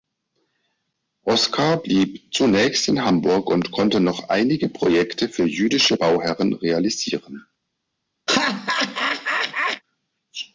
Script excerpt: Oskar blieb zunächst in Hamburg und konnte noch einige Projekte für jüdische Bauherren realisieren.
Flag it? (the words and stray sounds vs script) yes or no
yes